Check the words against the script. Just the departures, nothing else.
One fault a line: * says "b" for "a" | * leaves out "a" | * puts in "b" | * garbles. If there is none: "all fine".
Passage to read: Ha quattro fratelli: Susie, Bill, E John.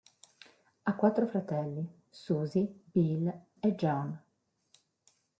all fine